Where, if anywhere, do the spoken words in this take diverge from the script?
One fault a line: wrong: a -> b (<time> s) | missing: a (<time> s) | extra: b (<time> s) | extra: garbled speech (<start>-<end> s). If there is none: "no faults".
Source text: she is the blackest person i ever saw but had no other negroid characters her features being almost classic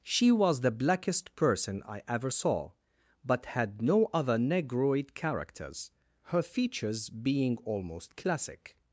wrong: is -> was (0.3 s)